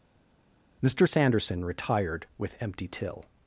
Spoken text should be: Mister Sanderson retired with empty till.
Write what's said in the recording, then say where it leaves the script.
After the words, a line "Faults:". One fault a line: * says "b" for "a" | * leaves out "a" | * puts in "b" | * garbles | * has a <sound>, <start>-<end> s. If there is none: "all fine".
Mister Sanderson retired with empty till.
Faults:
all fine